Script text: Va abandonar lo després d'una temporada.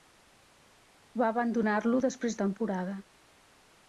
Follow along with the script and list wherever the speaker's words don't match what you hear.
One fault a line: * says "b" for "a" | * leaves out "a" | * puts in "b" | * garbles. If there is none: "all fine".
* leaves out "d'una"